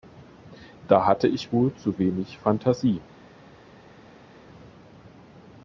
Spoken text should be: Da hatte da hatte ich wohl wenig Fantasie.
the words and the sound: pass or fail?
fail